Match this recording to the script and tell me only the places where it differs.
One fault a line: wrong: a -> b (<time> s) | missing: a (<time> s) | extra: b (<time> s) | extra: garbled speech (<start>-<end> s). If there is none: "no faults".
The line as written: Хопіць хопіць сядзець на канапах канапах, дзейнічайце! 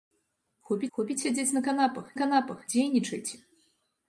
no faults